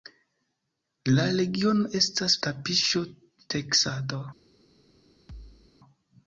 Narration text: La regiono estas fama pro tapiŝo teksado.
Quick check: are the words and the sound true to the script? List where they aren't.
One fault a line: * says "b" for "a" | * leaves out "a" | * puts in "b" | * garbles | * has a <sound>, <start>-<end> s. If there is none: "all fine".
* leaves out "fama pro"
* has a thud, 5.3-5.7 s